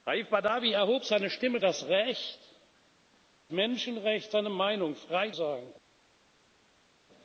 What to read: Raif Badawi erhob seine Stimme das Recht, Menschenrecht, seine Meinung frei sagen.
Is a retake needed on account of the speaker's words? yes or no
no